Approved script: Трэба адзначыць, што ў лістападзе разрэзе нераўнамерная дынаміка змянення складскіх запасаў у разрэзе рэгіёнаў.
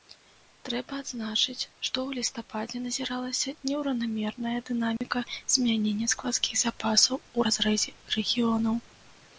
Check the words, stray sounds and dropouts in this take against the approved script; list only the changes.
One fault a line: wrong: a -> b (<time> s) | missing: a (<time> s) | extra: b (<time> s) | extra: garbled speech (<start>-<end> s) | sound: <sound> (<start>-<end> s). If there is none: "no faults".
wrong: разрэзе -> назіралася (2.9 s)
sound: dropout (5.0-5.0 s)